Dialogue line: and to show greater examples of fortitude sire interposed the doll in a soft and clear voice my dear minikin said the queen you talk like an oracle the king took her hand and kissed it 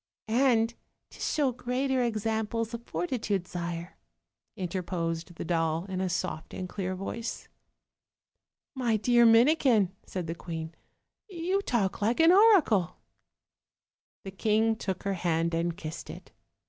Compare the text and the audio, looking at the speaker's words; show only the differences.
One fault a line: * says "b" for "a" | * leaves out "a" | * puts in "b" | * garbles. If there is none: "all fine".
all fine